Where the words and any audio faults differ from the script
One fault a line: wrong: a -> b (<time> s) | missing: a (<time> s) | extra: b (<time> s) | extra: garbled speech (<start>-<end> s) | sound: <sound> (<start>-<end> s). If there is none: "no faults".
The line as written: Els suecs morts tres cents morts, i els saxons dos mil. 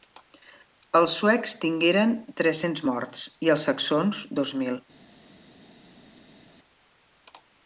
wrong: morts -> tingueren (1.6 s)